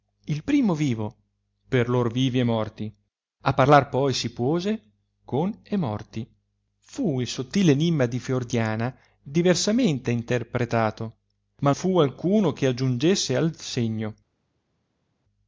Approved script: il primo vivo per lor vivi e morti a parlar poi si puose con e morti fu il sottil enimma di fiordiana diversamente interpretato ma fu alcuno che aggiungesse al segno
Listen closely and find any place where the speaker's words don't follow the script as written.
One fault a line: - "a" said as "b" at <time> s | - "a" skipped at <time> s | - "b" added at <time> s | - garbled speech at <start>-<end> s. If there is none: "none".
none